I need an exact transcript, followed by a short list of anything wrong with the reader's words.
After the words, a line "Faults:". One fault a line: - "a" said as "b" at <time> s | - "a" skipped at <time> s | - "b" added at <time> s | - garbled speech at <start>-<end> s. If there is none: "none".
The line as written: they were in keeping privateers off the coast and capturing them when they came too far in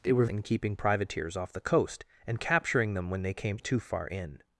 they were in keeping privateers off the coast and capturing them when they came too far in
Faults:
none